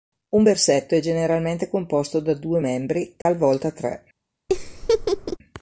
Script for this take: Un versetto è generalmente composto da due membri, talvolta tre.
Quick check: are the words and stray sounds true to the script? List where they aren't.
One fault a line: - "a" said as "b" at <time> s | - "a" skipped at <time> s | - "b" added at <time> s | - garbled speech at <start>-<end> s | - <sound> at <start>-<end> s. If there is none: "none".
- dropout at 3.2-3.3 s
- laugh at 4.5-5.4 s